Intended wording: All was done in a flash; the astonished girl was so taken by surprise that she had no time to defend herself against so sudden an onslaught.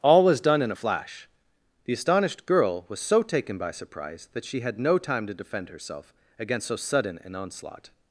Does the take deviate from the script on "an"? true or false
false